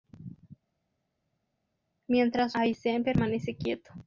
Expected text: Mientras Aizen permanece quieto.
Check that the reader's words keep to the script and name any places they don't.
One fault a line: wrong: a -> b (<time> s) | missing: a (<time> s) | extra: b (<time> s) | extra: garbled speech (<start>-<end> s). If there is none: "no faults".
no faults